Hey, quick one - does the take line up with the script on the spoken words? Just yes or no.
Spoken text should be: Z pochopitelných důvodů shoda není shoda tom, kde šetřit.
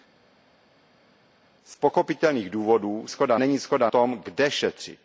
yes